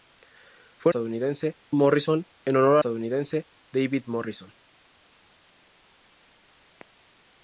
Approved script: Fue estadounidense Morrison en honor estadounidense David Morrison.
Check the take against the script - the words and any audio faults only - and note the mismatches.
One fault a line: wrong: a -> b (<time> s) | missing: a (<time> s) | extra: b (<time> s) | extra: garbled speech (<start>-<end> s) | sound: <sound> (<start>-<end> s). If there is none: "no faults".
no faults